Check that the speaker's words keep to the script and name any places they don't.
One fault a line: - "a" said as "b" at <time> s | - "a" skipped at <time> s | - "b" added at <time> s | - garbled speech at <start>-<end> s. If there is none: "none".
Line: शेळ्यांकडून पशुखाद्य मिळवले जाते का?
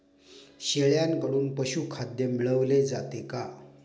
none